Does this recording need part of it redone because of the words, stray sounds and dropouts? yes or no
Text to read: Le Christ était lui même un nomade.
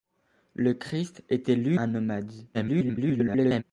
yes